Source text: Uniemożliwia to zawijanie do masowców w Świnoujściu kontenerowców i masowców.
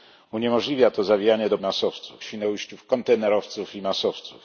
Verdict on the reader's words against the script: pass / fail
pass